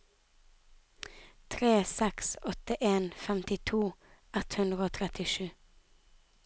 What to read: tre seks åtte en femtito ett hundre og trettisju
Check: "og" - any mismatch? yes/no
no